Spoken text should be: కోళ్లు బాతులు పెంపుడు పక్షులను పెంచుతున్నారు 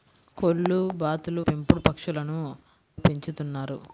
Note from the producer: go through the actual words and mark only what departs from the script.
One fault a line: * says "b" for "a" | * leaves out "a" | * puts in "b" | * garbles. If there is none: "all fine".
all fine